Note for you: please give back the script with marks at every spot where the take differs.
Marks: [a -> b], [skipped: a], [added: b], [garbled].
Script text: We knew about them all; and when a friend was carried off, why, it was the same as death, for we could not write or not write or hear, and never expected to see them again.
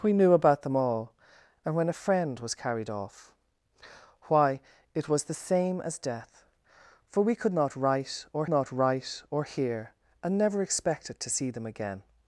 We knew about them all; and when a friend was carried off, why, it was the same as death, for we could not write or not write or hear, and never expected to see them again.